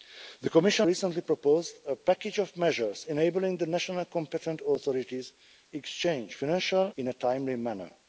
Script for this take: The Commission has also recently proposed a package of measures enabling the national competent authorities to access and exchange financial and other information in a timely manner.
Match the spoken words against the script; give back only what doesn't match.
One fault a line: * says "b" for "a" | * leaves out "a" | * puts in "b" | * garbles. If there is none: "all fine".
* leaves out "has also"
* leaves out "to access and"
* leaves out "and other information"